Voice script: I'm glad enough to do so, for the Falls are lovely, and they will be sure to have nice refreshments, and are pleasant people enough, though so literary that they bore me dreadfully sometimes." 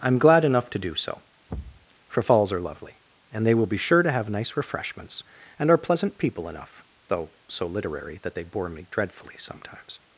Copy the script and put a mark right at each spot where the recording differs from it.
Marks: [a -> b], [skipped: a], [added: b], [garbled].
I'm glad enough to do so, for [skipped: the] Falls are lovely, and they will be sure to have nice refreshments, and are pleasant people enough, though so literary that they bore me dreadfully sometimes."